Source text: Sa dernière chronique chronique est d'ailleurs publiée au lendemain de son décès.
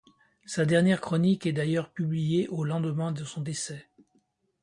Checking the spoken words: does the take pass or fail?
fail